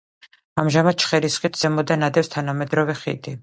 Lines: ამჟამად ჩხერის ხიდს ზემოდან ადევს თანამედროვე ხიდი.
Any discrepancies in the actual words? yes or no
no